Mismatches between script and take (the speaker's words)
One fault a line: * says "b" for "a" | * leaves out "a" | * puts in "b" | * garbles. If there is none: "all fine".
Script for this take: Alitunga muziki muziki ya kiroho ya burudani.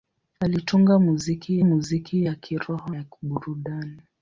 all fine